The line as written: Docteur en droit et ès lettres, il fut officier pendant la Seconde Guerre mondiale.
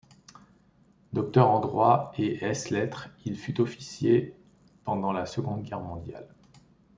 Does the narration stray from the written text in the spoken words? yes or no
no